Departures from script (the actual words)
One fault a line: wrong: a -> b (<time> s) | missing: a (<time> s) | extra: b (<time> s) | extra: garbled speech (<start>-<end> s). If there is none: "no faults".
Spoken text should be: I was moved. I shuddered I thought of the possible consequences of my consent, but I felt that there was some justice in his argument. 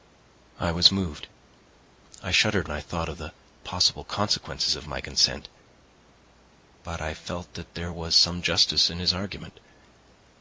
no faults